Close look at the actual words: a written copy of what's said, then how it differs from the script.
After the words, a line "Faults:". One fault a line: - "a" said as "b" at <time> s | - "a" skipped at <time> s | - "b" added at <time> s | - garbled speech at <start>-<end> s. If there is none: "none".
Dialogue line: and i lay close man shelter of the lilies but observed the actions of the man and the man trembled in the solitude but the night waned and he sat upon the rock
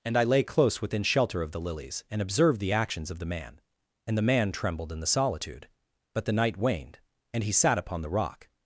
and i lay close within shelter of the lilies and observed the actions of the man and the man trembled in the solitude but the night waned and he sat upon the rock
Faults:
- "man" said as "within" at 0.8 s
- "but" said as "and" at 2.1 s